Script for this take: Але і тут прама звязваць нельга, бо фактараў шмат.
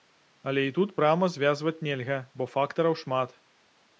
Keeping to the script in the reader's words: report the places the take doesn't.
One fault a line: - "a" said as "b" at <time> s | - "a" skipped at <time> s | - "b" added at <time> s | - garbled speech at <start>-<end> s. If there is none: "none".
none